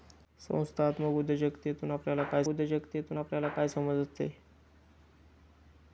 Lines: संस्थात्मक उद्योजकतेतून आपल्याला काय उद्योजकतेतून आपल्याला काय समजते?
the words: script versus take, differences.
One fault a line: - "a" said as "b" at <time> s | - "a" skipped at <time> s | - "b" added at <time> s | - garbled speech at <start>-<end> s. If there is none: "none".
none